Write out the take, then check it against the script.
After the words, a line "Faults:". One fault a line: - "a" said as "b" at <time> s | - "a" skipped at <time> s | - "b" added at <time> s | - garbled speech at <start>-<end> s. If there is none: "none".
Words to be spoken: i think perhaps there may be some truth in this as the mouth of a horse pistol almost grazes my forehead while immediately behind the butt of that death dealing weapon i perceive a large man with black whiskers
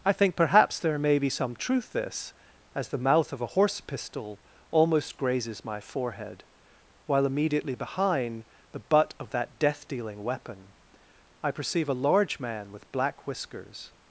i think perhaps there may be some truth this as the mouth of a horse pistol almost grazes my forehead while immediately behind the butt of that death dealing weapon i perceive a large man with black whiskers
Faults:
- "in" skipped at 1.9 s